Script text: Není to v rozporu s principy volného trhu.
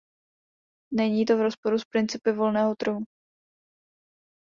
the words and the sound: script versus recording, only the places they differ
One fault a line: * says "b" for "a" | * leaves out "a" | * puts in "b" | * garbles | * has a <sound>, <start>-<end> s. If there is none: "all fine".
all fine